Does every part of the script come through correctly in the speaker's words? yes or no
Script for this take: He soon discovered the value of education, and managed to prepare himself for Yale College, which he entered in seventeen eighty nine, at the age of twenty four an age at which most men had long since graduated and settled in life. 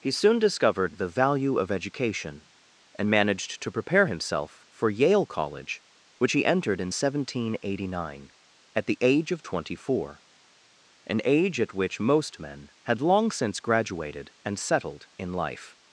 yes